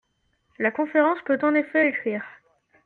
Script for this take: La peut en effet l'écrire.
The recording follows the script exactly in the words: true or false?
false